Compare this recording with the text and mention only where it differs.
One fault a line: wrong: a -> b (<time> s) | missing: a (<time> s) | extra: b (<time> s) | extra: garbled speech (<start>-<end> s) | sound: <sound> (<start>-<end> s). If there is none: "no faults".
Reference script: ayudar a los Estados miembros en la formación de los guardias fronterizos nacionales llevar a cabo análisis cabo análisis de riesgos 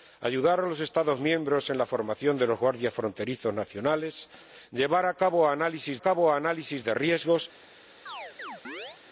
sound: chirp (8.1-9.0 s)